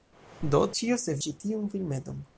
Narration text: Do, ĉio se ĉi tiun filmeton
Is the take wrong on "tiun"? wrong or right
right